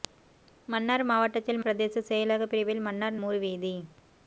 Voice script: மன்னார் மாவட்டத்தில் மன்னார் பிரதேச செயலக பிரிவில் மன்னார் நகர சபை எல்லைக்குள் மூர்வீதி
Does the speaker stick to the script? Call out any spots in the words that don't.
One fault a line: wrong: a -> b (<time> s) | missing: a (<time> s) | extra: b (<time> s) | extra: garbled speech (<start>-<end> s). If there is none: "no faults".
missing: மன்னார் (1.6 s)
missing: நகர சபை எல்லைக்குள் (3.2 s)